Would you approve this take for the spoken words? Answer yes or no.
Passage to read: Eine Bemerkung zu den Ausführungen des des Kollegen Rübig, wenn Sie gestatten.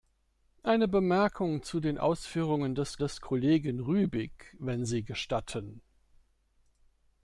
yes